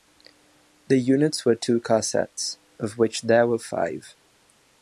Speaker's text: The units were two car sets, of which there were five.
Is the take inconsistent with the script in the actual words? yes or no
no